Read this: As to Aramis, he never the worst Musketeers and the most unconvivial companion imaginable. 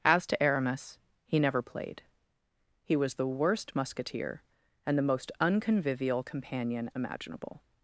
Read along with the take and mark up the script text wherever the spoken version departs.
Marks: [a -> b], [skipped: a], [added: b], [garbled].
As to Aramis, he never [added: played He was] the worst [Musketeers -> Musketeer] and the most unconvivial companion imaginable.